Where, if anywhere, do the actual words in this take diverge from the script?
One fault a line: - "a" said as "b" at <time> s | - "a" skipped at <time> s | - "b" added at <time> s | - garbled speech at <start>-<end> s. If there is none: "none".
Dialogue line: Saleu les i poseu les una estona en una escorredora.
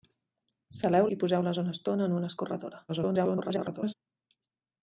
- "les" skipped at 1.1 s
- garbled speech at 2.9-3.9 s